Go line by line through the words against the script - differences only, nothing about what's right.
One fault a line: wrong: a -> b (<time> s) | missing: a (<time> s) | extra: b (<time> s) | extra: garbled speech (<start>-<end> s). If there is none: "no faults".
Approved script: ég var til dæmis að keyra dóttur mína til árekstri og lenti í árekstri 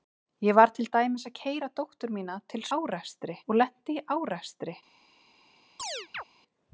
no faults